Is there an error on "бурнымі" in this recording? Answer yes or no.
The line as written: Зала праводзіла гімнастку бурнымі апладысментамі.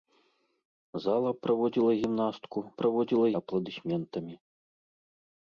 yes